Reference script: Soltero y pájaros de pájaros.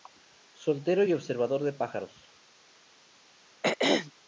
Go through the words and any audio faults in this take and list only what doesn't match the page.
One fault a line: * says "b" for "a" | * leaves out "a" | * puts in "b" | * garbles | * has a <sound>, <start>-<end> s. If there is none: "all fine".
* says "observador" for "pájaros"
* has a throat clearing, 3.6-4.1 s